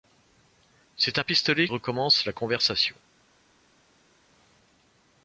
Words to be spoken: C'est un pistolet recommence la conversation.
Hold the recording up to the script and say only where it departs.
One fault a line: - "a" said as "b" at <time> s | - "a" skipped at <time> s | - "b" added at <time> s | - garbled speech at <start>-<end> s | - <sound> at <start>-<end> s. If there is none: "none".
none